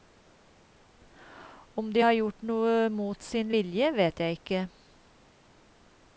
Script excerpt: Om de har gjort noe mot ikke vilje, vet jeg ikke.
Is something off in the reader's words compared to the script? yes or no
yes